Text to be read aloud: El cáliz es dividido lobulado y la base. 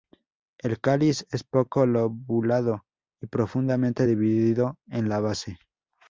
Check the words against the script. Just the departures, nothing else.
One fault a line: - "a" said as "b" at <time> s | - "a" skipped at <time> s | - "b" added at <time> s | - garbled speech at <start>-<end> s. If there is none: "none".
- "dividido" said as "poco" at 1.4 s
- "profundamente dividido en" added at 3.3 s